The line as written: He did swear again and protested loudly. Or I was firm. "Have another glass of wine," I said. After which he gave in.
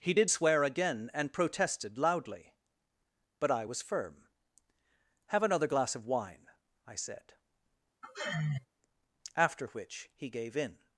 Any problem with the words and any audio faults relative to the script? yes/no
yes